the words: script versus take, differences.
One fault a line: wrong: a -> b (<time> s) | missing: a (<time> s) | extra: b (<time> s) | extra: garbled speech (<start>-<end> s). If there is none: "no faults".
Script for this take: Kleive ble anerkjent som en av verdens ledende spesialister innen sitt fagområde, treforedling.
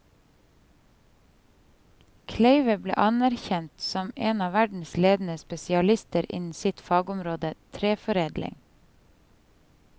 no faults